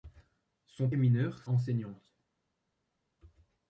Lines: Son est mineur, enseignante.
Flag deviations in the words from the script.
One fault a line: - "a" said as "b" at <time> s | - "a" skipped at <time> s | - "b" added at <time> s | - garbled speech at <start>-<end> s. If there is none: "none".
none